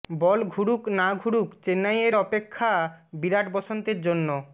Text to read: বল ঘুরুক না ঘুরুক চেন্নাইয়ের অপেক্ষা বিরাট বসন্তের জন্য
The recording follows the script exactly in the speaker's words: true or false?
true